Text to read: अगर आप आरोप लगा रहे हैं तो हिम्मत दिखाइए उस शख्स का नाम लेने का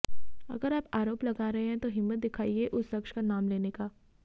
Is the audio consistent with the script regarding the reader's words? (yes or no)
yes